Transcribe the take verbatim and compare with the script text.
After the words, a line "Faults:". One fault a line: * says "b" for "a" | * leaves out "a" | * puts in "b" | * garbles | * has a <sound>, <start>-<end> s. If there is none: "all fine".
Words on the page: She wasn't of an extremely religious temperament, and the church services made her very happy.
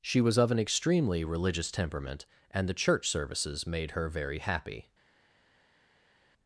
She was of an extremely religious temperament, and the church services made her very happy.
Faults:
* says "was" for "wasn't"